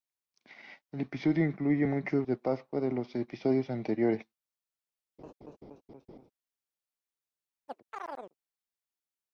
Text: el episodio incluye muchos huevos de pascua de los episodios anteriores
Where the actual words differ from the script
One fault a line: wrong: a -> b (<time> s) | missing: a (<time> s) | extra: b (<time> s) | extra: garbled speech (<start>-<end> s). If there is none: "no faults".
missing: huevos (2.2 s)